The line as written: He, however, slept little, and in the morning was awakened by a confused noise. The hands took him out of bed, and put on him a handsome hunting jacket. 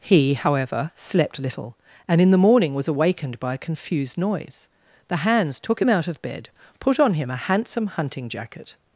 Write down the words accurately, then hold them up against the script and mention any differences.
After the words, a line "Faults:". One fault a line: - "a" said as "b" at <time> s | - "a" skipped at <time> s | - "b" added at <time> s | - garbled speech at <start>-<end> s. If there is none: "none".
He, however, slept little, and in the morning was awakened by a confused noise. The hands took him out of bed, put on him a handsome hunting jacket.
Faults:
- "and" skipped at 6.5 s